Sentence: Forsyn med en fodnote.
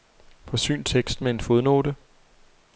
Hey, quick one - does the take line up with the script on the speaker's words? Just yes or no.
no